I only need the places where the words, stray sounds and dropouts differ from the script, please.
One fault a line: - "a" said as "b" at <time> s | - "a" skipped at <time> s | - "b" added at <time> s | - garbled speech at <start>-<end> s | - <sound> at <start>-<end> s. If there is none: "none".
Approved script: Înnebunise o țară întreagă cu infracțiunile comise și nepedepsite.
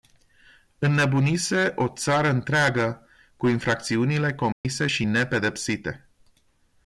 - dropout at 4.5-4.7 s